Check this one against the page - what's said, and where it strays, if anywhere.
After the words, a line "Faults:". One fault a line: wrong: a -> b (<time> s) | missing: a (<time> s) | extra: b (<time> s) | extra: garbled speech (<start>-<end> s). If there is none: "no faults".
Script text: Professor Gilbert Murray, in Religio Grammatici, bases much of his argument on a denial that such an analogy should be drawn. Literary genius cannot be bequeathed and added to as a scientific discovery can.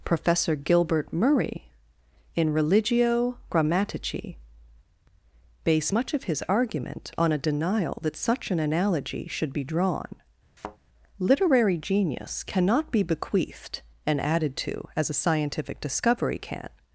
Professor Gilbert Murray, in Religio Grammatici, base much of his argument on a denial that such an analogy should be drawn. Literary genius cannot be bequeathed and added to as a scientific discovery can.
Faults:
wrong: bases -> base (5.6 s)